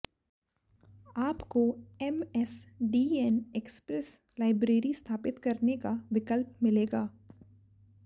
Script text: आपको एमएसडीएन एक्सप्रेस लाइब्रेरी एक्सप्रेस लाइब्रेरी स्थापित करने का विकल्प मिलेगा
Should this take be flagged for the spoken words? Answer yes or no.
yes